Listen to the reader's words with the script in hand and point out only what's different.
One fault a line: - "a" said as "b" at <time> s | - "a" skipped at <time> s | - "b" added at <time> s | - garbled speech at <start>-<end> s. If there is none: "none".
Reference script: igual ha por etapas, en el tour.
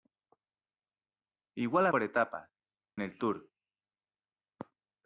none